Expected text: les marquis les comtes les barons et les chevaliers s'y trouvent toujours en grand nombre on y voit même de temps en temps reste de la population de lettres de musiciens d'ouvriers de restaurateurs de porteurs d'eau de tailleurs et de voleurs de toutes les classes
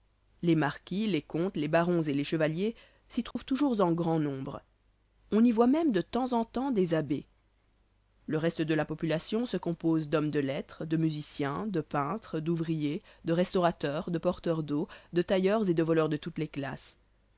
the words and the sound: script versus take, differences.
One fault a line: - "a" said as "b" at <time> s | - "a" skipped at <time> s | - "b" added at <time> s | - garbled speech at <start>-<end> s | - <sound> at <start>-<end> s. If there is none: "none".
- dropout at 3.3-3.4 s
- "des abbés le" added at 6.7 s
- "se compose d'hommes" added at 9.4 s
- "de peintres" added at 11.7 s